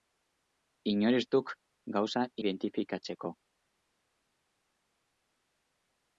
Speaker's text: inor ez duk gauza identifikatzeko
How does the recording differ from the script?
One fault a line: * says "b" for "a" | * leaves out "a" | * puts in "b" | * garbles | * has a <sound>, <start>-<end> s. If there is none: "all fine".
all fine